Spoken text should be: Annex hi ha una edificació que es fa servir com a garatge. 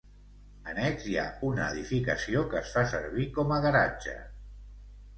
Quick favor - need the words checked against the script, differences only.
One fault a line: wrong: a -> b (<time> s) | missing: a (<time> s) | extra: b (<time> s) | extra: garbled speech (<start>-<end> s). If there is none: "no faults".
no faults